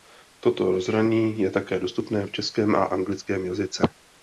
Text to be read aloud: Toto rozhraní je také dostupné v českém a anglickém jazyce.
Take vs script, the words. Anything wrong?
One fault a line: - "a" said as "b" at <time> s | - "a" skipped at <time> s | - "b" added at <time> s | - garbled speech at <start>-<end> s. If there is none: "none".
none